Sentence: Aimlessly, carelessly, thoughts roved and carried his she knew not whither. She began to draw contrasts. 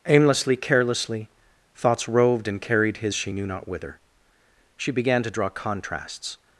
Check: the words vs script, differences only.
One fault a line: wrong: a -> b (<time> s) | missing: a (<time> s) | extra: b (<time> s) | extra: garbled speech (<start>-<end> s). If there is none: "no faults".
no faults